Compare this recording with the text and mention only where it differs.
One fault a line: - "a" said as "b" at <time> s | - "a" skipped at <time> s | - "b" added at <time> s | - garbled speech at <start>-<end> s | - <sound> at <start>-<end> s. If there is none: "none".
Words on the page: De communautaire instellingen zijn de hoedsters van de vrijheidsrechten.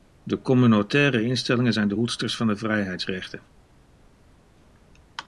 none